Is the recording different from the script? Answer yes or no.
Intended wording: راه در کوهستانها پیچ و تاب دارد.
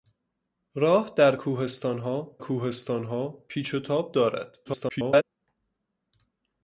yes